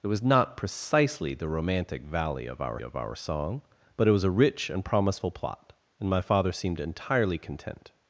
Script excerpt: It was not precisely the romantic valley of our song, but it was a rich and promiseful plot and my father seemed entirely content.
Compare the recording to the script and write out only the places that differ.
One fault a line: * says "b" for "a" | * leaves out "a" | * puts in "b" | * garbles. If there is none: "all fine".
* puts in "of our"